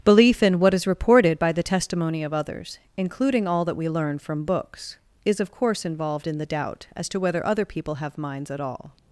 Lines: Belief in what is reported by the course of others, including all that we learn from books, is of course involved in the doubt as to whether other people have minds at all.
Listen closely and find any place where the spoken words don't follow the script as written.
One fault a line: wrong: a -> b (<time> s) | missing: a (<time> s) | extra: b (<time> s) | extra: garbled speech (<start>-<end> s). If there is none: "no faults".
wrong: course -> testimony (1.6 s)